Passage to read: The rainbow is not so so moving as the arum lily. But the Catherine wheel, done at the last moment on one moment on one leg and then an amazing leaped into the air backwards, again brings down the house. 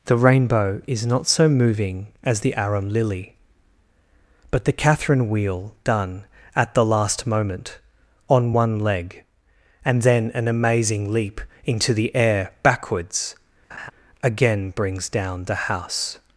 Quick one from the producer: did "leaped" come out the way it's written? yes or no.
no